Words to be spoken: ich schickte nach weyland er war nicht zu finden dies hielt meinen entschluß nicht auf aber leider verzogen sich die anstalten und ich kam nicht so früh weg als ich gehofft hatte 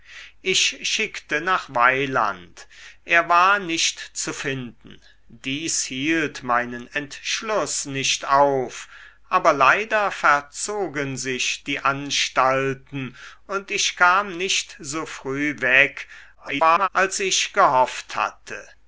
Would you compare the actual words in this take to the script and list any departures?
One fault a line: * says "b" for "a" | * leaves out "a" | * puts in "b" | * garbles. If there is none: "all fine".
* garbles